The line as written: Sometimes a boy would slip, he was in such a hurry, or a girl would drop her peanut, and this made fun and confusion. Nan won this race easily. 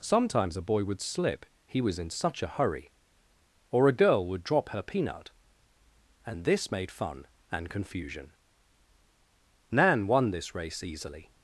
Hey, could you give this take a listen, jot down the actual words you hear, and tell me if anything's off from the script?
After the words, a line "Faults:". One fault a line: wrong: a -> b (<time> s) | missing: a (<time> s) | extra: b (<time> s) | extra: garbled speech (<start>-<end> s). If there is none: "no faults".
Sometimes a boy would slip, he was in such a hurry, or a girl would drop her peanut, and this made fun and confusion. Nan won this race easily.
Faults:
no faults